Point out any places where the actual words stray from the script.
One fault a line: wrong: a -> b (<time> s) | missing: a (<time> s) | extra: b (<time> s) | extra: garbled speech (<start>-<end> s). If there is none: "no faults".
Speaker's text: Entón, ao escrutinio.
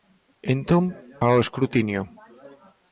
no faults